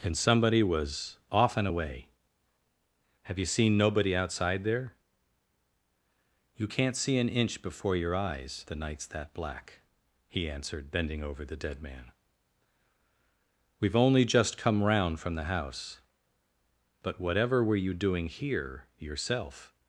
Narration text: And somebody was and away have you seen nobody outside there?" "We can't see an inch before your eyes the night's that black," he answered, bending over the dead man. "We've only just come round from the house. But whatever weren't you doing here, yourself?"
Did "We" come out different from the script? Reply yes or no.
yes